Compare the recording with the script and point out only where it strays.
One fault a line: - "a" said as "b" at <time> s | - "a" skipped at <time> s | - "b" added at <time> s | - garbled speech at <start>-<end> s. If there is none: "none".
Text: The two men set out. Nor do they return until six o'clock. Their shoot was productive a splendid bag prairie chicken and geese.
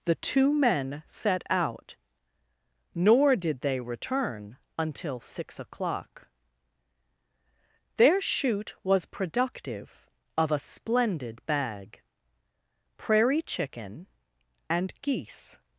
- "do" said as "did" at 3.4 s
- "of" added at 10.4 s